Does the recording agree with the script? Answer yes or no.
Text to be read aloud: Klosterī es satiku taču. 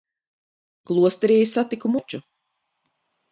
yes